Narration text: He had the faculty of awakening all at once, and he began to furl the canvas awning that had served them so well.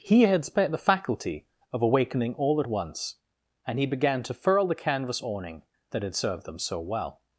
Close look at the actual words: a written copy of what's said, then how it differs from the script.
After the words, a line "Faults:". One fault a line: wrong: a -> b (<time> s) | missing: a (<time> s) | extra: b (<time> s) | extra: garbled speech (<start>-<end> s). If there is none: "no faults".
He had spent the faculty of awakening all at once, and he began to furl the canvas awning that had served them so well.
Faults:
extra: spent (0.4 s)